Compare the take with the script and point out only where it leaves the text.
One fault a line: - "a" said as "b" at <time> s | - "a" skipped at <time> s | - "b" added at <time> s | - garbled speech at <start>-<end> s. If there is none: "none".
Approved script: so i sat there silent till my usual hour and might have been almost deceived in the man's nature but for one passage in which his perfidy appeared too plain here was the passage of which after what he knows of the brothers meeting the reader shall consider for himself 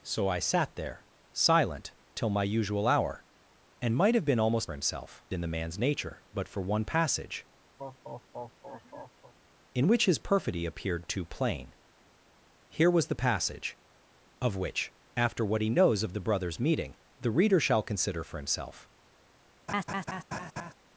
- "deceived" said as "himself" at 4.7 s